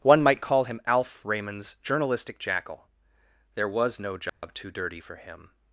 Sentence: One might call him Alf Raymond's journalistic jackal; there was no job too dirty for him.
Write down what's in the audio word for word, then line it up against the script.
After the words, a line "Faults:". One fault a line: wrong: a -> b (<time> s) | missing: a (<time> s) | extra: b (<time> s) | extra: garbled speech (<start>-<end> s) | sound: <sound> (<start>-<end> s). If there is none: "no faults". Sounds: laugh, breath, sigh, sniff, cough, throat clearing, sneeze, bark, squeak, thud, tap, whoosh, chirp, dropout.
One might call him Alf Raymond's journalistic jackal; there was no job too dirty for him.
Faults:
sound: dropout (4.3-4.4 s)